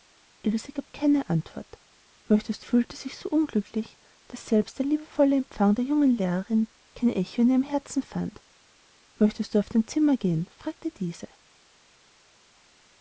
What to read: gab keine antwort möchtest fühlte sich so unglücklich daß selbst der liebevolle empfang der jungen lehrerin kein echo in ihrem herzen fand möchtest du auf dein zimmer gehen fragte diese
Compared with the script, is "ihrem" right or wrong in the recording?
right